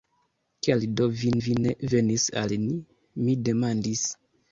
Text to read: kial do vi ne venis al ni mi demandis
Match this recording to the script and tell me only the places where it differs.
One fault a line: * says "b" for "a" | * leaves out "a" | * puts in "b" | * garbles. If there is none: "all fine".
* puts in "vi"